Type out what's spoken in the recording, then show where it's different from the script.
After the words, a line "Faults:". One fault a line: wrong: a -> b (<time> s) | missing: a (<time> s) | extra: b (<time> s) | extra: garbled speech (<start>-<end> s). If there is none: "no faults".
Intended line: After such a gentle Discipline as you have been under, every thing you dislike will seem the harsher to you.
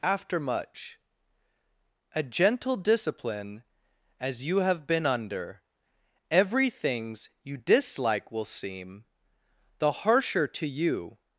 After much a gentle Discipline as you have been under, every things you dislike will seem the harsher to you.
Faults:
wrong: such -> much (0.4 s)
wrong: thing -> things (6.7 s)